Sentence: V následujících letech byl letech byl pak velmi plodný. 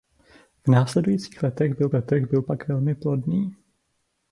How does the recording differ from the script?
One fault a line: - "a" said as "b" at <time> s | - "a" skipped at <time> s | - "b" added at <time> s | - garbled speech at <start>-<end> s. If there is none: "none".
none